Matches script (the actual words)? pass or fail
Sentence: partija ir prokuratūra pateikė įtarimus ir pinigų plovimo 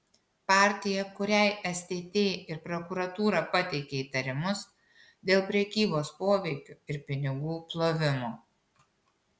fail